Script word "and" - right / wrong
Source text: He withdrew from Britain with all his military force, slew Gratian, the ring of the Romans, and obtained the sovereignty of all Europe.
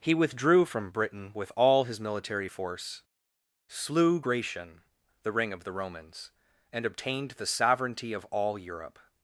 right